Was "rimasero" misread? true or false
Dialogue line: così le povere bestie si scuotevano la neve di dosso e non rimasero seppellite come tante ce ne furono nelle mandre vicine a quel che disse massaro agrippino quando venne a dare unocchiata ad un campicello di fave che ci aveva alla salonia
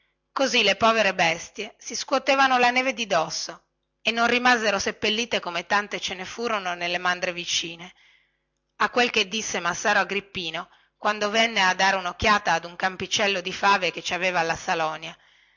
false